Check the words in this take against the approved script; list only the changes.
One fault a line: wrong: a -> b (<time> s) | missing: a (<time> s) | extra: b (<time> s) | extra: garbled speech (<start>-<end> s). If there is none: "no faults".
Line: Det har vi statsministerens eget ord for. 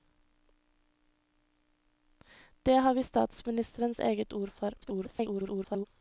extra: garbled speech (4.8-5.9 s)